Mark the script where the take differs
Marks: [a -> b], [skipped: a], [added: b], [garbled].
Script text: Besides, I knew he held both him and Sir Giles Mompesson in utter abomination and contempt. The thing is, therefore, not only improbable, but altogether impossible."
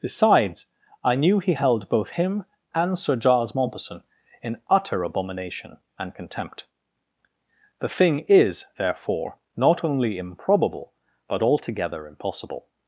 Besides, I knew he held both him and Sir Giles Mompesson in utter abomination and contempt. The thing is, therefore, not only improbable, but altogether impossible."